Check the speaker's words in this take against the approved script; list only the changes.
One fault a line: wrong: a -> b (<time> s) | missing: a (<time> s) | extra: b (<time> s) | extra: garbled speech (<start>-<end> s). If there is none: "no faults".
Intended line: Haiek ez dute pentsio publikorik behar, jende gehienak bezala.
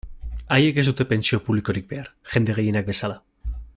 no faults